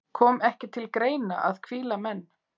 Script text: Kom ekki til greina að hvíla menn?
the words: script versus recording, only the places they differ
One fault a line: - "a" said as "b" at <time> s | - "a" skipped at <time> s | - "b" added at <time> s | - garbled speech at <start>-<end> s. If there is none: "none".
none